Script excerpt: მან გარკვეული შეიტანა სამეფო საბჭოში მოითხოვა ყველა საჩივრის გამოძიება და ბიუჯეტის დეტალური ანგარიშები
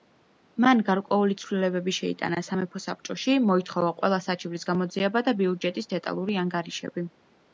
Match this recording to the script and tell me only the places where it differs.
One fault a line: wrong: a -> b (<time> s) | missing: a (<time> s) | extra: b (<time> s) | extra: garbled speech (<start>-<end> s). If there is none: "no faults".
extra: ცვლილებები (1.4 s)